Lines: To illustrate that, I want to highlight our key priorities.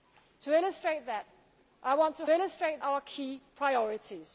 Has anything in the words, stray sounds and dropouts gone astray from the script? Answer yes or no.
yes